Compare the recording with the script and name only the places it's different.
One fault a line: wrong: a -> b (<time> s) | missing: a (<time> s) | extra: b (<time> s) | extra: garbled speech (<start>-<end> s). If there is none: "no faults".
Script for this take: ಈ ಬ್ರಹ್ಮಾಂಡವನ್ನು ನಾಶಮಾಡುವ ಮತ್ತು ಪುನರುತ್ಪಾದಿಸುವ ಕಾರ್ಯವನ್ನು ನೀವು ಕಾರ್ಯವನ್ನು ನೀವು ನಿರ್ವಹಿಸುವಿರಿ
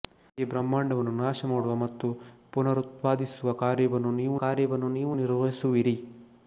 no faults